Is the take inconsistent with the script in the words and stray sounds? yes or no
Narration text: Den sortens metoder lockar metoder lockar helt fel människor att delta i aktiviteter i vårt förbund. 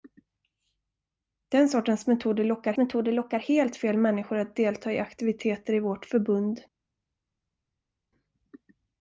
no